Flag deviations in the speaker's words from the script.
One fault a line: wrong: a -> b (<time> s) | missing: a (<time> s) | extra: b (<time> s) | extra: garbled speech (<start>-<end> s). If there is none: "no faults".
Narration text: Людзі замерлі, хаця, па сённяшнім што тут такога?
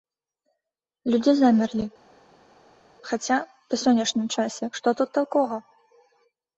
extra: часе (4.4 s)